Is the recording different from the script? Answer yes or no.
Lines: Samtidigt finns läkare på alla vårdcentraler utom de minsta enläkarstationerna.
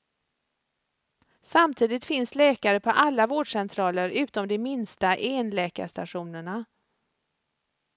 no